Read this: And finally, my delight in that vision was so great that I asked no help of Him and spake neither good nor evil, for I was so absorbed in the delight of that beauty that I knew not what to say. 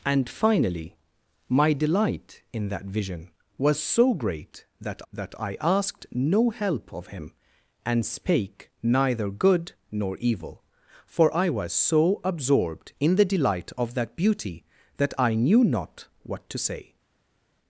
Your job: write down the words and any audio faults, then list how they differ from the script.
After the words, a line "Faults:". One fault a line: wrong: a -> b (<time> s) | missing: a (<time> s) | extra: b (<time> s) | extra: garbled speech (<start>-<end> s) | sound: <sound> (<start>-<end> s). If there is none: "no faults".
And finally, my delight in that vision was so great that that I asked no help of Him and spake neither good nor evil, for I was so absorbed in the delight of that beauty that I knew not what to say.
Faults:
extra: that (5.1 s)